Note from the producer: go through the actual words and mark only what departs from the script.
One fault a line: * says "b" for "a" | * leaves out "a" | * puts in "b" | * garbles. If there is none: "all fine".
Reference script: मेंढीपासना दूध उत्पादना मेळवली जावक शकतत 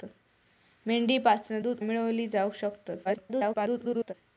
* leaves out "उत्पादना"
* garbles